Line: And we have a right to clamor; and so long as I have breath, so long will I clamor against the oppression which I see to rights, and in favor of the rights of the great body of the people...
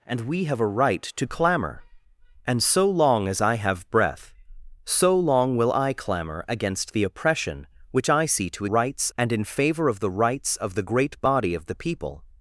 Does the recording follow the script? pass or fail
pass